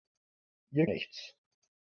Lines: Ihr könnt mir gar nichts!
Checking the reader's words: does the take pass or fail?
fail